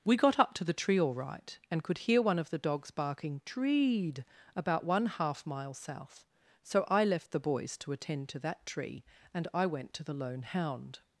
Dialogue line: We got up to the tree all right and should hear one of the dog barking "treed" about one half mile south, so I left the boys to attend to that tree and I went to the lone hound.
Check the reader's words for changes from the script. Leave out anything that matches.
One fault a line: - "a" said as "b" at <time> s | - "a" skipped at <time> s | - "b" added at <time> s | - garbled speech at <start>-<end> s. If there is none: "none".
- "should" said as "could" at 1.8 s
- "dog" said as "dogs" at 2.6 s